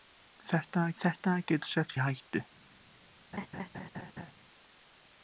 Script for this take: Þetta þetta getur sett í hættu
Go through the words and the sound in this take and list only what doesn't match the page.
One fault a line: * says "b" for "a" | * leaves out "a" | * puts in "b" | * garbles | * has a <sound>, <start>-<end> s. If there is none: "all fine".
* has a laugh, 3.3-4.3 s